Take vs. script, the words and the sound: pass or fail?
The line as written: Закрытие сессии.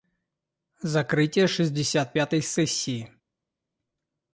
fail